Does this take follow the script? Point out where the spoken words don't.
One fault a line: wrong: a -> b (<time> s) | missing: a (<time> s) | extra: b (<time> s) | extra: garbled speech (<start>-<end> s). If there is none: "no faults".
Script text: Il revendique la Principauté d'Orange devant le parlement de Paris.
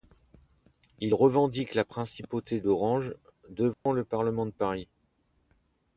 no faults